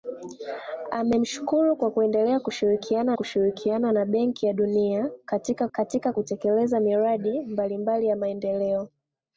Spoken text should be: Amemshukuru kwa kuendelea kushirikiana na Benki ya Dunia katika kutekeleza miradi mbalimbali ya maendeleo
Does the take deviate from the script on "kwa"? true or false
false